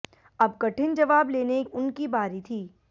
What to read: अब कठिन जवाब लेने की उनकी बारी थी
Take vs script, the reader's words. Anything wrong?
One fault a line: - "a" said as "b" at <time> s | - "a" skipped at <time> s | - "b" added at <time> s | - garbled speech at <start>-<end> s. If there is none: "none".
- "की" skipped at 1.6 s